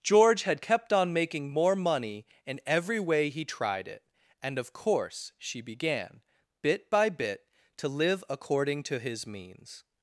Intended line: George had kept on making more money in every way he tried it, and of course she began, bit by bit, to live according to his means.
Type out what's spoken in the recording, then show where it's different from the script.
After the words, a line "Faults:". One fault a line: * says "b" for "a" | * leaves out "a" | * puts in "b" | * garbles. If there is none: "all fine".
George had kept on making more money in every way he tried it, and of course she began, bit by bit, to live according to his means.
Faults:
all fine